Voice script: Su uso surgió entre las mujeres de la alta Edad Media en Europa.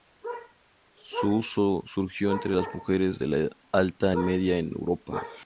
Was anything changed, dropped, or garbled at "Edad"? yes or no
yes